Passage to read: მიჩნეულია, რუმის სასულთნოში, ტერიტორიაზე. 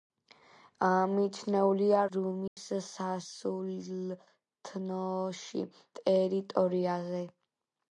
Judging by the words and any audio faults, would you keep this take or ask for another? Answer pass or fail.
fail